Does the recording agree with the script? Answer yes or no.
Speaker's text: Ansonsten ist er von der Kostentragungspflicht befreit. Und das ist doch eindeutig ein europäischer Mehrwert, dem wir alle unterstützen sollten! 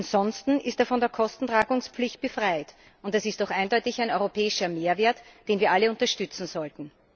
no